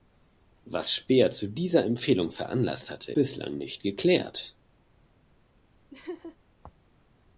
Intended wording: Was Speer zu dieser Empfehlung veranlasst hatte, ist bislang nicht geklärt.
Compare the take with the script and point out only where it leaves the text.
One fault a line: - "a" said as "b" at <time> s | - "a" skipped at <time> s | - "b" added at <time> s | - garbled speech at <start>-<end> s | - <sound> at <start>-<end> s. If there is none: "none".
- "ist" skipped at 3.1 s
- laugh at 5.9-6.4 s